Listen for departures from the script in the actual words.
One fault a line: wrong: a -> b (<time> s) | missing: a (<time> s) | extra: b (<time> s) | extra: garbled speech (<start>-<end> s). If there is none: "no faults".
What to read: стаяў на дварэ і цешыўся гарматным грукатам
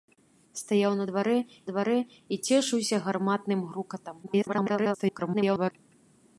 extra: дварэ (1.7 s)
extra: garbled speech (4.2-5.7 s)